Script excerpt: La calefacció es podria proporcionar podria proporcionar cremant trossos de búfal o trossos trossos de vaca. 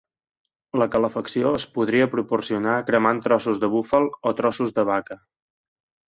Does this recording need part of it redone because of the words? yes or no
yes